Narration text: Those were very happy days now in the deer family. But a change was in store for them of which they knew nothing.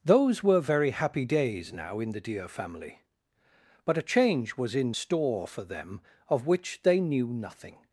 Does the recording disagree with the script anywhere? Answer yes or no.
no